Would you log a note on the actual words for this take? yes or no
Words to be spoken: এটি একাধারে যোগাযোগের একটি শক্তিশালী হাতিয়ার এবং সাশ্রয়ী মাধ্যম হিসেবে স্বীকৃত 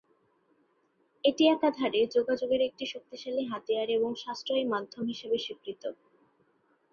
no